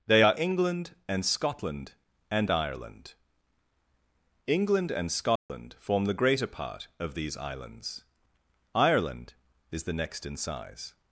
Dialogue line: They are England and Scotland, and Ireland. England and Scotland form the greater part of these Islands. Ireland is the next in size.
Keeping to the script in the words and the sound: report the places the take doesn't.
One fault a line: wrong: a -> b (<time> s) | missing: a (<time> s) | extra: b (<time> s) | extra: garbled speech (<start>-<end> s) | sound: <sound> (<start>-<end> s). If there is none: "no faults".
sound: dropout (5.4-5.5 s)